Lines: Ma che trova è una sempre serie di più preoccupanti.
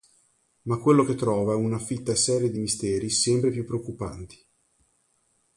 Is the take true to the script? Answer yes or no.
no